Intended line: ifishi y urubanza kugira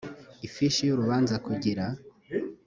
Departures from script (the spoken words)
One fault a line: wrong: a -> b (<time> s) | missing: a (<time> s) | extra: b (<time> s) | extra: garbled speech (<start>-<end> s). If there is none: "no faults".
no faults